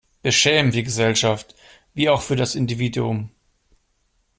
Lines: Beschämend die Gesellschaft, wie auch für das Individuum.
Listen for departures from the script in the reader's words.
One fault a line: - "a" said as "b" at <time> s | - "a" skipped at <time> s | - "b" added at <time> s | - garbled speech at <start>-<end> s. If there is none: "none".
none